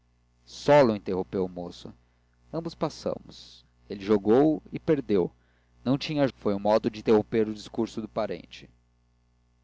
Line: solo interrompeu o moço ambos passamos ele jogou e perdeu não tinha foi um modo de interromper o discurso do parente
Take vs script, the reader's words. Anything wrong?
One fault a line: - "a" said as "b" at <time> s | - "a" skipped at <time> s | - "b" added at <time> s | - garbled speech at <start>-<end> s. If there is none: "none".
none